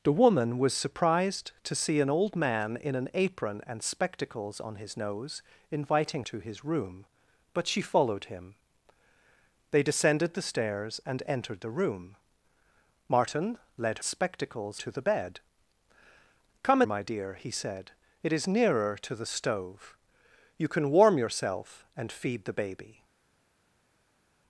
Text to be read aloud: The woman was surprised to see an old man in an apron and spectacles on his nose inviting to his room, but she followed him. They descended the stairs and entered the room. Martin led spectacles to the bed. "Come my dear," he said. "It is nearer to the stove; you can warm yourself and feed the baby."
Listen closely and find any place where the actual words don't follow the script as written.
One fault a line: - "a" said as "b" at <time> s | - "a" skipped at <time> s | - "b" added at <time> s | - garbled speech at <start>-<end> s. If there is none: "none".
none